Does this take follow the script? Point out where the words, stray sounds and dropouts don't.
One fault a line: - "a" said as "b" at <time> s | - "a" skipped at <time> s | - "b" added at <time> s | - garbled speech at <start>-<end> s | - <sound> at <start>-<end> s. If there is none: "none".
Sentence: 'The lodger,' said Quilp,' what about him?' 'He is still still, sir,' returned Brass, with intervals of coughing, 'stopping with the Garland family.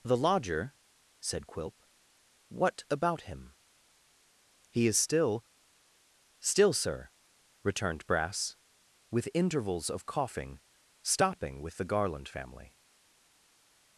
none